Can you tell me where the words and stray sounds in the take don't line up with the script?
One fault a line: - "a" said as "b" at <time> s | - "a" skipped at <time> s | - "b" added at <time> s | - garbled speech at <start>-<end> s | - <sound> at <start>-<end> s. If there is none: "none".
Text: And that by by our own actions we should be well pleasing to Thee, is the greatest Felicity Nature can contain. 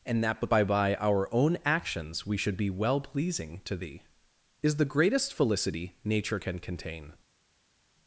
none